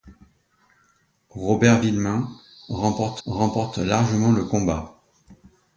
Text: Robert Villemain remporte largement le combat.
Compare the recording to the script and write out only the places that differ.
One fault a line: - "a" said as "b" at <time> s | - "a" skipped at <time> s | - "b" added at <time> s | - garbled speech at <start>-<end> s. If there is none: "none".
- "remporte" added at 3.3 s